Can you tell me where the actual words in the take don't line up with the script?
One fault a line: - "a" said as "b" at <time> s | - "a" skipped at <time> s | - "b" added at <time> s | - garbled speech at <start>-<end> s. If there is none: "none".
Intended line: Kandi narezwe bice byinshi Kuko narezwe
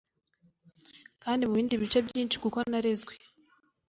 - "narezwe" said as "mubindi" at 1.5 s